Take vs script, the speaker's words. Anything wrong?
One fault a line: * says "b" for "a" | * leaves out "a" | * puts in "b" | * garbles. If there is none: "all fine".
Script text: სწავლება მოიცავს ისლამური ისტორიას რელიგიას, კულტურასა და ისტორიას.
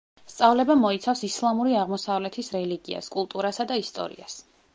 * says "აღმოსავლეთის" for "ისტორიას"